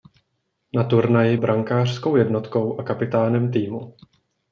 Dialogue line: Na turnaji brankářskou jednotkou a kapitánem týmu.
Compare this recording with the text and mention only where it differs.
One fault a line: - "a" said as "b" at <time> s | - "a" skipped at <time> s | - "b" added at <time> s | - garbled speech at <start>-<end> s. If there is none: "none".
none